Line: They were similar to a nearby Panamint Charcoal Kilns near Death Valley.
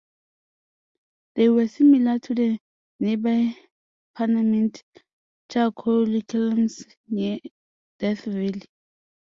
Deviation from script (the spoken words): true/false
true